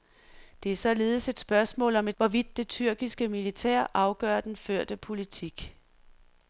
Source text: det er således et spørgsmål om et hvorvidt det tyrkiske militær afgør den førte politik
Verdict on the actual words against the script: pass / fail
pass